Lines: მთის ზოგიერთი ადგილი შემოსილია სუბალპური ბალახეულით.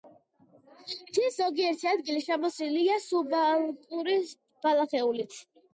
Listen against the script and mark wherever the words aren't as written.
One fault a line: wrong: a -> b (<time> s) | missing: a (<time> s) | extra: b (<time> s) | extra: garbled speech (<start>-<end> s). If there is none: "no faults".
no faults